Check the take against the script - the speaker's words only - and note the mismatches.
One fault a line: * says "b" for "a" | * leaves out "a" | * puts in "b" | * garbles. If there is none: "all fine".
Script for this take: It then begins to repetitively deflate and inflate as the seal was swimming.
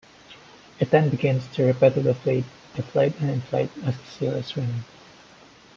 * says "is" for "was"